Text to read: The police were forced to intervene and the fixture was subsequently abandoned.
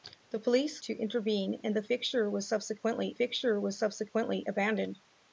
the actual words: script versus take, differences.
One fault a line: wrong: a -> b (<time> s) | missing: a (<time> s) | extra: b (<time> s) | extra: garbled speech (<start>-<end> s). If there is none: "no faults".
missing: were forced (0.8 s)
extra: fixture was subsequently (3.1 s)